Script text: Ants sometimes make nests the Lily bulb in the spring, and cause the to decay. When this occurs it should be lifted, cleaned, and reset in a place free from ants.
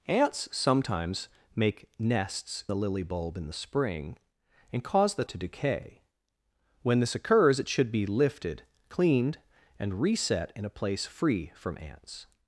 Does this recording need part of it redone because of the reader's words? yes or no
no